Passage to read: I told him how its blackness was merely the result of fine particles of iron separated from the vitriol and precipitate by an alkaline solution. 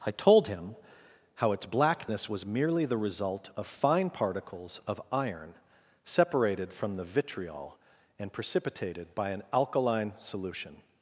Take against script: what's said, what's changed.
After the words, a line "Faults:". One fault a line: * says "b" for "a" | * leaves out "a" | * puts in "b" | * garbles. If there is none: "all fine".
I told him how its blackness was merely the result of fine particles of iron separated from the vitriol and precipitated by an alkaline solution.
Faults:
* says "precipitated" for "precipitate"